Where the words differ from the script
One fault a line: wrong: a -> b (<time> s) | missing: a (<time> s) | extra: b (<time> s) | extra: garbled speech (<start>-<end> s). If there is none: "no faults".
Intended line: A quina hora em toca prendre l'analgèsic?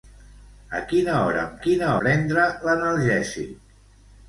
wrong: toca -> quina (1.7 s)